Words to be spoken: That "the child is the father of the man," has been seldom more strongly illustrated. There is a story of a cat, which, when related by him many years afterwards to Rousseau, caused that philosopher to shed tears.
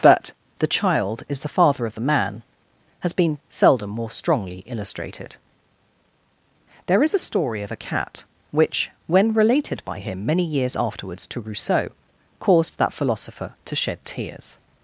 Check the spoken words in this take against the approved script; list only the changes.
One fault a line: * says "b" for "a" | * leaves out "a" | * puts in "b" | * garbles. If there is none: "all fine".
* says "But" for "That"